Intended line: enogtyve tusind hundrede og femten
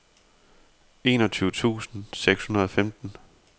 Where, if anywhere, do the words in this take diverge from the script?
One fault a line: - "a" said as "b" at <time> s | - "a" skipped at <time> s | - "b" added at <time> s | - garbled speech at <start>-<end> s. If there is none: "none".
- "seks" added at 2.1 s